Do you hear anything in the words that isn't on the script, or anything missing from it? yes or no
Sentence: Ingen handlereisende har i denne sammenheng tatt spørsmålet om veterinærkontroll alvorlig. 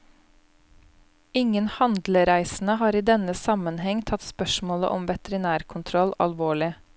no